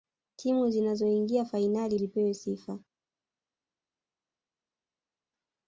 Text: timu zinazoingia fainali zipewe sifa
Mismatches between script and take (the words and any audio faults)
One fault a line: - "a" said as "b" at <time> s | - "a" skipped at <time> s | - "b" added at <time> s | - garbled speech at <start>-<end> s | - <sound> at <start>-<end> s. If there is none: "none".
none